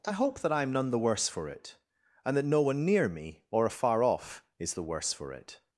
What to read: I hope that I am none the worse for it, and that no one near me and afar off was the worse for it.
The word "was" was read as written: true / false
false